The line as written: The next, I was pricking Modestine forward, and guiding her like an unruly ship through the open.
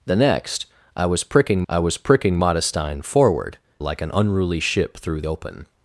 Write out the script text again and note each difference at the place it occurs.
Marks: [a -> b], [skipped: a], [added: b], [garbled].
The next, I was pricking [Modestine forward, and guiding her -> I was pricking Modestine forward] like an unruly ship through [skipped: the] open.